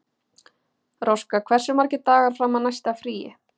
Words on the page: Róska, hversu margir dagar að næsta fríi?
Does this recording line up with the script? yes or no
no